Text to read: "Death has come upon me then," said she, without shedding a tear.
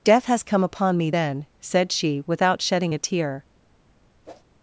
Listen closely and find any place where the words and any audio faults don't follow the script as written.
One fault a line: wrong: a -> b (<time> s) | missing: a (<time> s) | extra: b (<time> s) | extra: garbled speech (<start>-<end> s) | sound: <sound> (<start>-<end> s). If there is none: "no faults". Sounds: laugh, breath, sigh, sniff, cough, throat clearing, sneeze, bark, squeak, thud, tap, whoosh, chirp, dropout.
sound: whoosh (4.3-4.4 s)